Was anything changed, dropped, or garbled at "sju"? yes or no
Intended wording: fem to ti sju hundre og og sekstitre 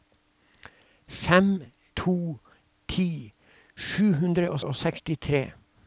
no